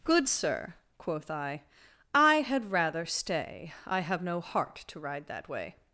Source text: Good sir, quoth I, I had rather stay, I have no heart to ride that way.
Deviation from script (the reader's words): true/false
false